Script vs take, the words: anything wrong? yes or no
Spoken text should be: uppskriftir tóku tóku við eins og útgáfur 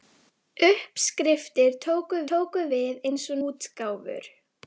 no